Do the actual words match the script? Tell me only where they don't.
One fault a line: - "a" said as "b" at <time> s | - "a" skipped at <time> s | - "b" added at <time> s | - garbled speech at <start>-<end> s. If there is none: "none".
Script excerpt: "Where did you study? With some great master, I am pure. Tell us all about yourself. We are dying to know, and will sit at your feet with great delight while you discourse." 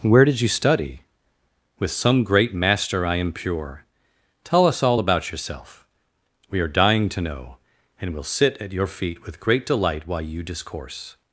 none